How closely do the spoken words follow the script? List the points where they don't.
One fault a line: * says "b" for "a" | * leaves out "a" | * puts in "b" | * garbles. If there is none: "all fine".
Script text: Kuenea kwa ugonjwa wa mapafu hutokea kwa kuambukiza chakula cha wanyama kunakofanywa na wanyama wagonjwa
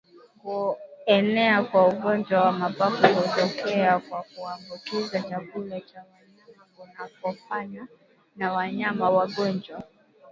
all fine